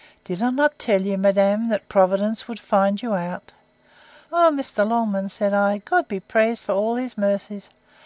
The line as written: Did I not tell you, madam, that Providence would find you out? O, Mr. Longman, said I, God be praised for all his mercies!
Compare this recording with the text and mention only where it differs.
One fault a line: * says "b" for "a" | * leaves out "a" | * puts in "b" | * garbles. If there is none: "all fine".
all fine